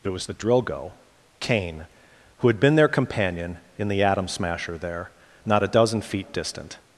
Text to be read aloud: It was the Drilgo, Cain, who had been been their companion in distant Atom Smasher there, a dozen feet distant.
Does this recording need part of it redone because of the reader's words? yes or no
yes